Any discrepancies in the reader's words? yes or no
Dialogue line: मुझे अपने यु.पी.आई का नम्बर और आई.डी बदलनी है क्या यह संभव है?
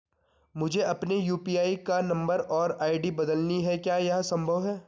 no